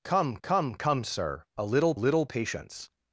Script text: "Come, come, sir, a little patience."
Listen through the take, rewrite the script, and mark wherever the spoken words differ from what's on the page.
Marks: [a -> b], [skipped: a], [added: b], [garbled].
"Come, come, [added: come] sir, a little [added: little] patience."